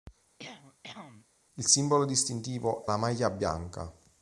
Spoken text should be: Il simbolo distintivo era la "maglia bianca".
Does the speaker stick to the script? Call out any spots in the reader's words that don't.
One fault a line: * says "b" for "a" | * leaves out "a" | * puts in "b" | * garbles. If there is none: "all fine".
* leaves out "era"